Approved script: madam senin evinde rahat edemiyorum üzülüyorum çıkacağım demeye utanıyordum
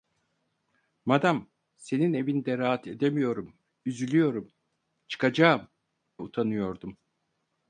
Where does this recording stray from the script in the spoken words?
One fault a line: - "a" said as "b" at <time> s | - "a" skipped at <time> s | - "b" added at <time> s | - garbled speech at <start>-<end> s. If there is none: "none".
- "demeye" skipped at 5.7 s